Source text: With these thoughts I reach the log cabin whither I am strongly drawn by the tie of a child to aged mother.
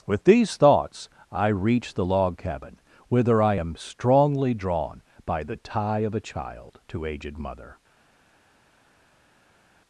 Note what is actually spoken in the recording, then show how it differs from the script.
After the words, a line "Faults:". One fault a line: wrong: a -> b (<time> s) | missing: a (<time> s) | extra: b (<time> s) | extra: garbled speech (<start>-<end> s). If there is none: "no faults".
With these thoughts I reach the log cabin whither I am strongly drawn by the tie of a child to aged mother.
Faults:
no faults